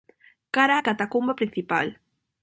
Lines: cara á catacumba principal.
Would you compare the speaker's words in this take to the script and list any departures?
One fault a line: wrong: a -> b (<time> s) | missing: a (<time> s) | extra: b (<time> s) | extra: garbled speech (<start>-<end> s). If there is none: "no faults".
no faults